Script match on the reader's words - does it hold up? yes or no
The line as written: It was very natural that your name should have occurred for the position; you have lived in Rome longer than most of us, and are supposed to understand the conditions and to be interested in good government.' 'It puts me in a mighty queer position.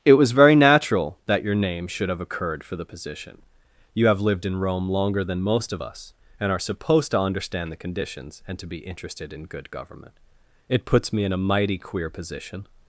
yes